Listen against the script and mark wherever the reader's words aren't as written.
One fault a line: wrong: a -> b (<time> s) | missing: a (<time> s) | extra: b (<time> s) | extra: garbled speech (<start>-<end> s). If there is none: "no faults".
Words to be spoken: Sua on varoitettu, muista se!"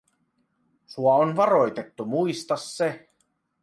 no faults